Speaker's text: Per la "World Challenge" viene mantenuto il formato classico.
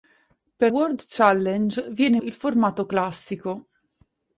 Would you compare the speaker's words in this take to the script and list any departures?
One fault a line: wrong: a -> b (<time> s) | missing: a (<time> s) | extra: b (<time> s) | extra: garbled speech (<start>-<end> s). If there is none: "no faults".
missing: la (0.7 s)
missing: mantenuto (2.2 s)